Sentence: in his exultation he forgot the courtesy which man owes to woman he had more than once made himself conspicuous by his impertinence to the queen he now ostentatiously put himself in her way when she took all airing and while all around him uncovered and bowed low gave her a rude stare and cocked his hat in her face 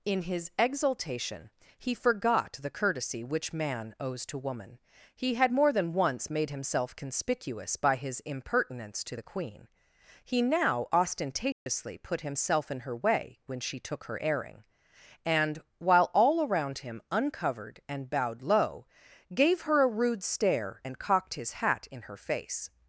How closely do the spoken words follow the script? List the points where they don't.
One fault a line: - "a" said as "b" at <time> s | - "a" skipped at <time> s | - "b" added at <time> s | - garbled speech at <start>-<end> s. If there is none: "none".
- "all" said as "her" at 14.0 s